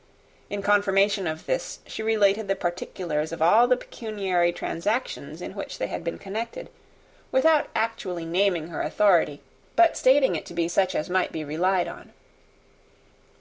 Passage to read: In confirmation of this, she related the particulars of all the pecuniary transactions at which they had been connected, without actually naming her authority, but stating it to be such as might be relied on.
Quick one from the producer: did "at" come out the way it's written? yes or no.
no